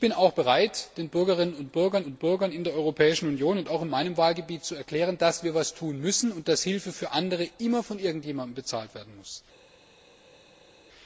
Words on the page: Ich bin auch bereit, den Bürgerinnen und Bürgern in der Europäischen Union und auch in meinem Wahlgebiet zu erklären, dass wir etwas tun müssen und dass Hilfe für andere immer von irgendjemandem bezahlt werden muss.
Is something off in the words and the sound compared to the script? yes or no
yes